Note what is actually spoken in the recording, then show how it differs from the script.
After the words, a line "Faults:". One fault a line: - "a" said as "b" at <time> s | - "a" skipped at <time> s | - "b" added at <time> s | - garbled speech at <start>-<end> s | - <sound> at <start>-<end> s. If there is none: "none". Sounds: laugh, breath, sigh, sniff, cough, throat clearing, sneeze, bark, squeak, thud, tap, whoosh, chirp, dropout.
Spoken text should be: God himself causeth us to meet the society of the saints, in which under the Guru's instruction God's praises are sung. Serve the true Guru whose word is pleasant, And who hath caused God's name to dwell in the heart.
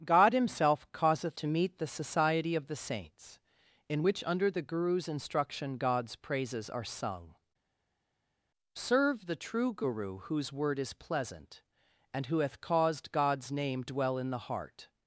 God himself causeth to meet the society of the saints, in which under the Guru's instruction God's praises are sung. Serve the true Guru whose word is pleasant, And who hath caused God's name dwell in the heart.
Faults:
- "us" skipped at 1.4 s
- "to" skipped at 13.8 s